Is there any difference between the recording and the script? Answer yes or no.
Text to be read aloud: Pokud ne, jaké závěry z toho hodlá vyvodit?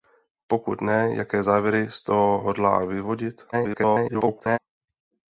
yes